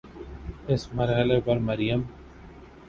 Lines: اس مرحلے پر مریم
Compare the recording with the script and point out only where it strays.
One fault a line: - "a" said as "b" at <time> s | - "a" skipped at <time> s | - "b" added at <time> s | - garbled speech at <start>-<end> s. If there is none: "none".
none